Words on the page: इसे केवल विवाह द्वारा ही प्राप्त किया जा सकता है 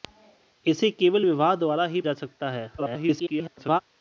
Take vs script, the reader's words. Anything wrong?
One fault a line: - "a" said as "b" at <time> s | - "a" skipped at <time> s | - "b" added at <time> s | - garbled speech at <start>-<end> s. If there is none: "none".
- "प्राप्त किया" skipped at 2.0 s
- garbled speech at 2.8-3.8 s